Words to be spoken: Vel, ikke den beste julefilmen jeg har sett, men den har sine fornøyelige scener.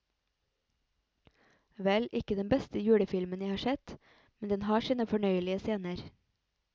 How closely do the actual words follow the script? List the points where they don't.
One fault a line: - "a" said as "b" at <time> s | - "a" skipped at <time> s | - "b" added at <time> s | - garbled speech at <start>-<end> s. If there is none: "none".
none